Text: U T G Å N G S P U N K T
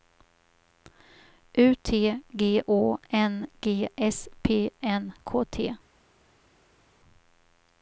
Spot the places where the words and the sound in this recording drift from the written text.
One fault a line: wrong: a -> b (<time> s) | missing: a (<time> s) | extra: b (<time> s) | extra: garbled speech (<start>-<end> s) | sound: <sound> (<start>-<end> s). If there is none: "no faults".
missing: U (4.7 s)